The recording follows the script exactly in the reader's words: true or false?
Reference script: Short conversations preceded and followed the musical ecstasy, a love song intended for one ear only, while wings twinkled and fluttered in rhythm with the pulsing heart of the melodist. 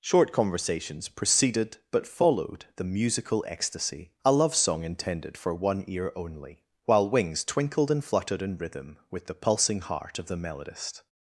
false